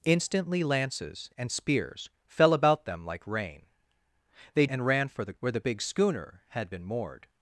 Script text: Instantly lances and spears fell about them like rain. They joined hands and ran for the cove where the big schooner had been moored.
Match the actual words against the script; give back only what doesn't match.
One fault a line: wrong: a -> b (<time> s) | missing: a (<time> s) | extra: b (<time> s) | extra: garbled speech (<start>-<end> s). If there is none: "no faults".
missing: joined hands (4.7 s)
missing: cove (5.3 s)